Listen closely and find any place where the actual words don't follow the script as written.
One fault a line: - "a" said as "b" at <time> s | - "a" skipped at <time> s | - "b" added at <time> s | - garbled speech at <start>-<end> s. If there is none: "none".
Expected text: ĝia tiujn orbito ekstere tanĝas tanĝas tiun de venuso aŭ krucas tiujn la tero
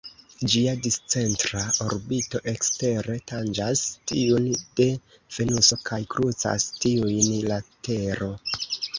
- "tiujn" said as "discentra" at 0.8 s
- "tanĝas" skipped at 3.8 s
- "aŭ" said as "kaj" at 5.9 s